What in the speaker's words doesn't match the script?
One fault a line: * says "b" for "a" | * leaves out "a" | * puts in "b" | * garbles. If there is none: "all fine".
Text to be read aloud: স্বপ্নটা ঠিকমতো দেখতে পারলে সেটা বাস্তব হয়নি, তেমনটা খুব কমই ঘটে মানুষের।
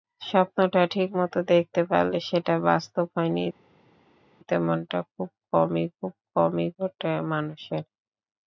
* puts in "খুব কমই"